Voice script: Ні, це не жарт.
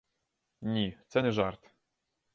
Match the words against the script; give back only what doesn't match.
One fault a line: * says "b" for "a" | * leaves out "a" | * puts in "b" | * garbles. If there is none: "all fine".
all fine